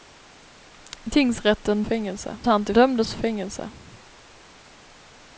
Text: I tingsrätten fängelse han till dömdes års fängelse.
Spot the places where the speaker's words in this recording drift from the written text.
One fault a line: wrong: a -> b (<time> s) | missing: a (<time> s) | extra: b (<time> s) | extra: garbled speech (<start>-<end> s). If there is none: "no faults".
no faults